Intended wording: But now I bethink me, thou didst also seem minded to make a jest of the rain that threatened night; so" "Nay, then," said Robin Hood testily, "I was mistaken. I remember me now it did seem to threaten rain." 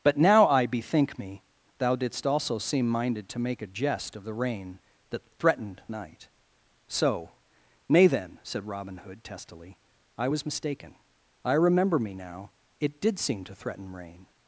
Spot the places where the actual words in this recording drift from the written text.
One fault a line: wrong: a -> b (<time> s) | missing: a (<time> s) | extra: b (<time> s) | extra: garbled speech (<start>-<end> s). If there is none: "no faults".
no faults